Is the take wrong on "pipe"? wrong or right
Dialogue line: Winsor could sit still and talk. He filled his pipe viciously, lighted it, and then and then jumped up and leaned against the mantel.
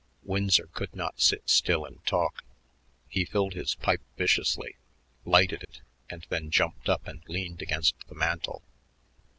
right